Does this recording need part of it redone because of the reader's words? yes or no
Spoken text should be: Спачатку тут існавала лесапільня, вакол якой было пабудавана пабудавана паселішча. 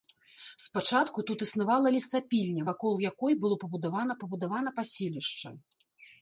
no